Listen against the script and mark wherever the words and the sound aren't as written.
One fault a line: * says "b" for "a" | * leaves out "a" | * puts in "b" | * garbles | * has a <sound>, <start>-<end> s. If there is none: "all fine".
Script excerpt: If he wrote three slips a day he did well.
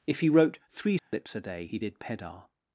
* has a dropout, 1.0-1.1 s
* says "pedar" for "well"